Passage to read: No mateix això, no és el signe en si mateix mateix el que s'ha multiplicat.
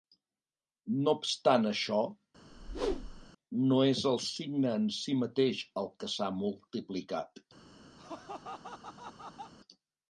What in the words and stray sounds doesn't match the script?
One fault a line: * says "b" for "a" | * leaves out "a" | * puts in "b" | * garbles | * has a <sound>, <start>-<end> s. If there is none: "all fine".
* says "obstant" for "mateix"
* has a whoosh, 2.5-3.3 s
* leaves out "mateix"
* has a laugh, 8.0-9.5 s